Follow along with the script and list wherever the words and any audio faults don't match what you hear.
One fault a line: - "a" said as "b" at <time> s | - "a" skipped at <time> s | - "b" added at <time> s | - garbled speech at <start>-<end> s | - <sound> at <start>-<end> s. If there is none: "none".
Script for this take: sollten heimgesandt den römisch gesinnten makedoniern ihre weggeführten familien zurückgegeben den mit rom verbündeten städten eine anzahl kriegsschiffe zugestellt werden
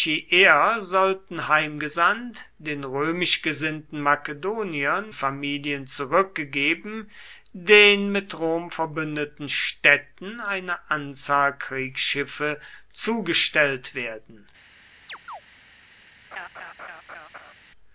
- "ihre weggeführten" skipped at 5.1 s
- chirp at 15.1-15.4 s
- laugh at 16.3-17.5 s